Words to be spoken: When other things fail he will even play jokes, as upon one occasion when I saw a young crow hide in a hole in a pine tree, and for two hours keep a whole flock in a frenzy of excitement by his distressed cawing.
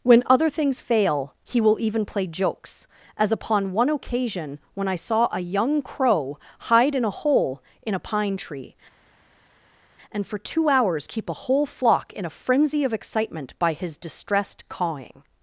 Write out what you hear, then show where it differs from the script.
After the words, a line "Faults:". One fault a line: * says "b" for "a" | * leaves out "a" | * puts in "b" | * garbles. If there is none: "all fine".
When other things fail he will even play jokes, as upon one occasion when I saw a young crow hide in a hole in a pine tree, and for two hours keep a whole flock in a frenzy of excitement by his distressed cawing.
Faults:
all fine